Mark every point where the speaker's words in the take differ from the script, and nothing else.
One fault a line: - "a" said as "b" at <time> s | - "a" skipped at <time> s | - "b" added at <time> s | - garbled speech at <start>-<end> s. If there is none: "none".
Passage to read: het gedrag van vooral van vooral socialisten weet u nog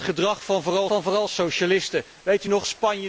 none